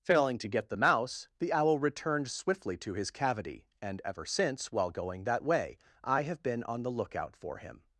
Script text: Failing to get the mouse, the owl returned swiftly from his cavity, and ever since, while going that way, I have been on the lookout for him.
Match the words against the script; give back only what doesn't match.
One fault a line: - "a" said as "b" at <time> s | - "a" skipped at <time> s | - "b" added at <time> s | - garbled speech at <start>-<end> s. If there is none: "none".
- "from" said as "to" at 2.8 s